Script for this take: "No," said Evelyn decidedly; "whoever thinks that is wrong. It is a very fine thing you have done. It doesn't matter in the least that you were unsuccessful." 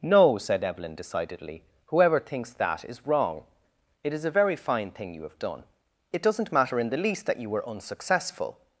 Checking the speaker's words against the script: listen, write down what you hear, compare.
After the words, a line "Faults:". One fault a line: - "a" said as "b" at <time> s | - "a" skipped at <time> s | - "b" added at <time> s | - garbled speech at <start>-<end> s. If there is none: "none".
"No," said Evelyn decidedly; "whoever thinks that is wrong. It is a very fine thing you have done. It doesn't matter in the least that you were unsuccessful."
Faults:
none